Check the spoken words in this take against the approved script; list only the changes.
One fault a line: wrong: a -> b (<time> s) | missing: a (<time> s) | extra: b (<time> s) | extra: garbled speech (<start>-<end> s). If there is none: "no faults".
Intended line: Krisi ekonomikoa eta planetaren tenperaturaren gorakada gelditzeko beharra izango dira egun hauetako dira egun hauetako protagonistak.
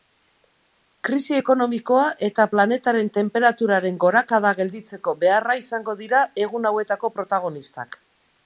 missing: dira egun hauetako (7.2 s)